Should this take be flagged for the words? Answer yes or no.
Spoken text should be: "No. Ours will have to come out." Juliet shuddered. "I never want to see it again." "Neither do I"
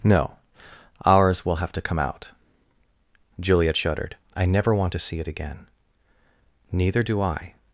no